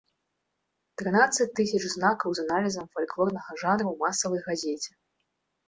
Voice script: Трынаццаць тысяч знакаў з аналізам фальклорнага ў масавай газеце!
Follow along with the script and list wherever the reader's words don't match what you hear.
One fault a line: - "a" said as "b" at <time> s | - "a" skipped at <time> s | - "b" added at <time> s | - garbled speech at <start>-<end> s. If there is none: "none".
- "жанру" added at 3.7 s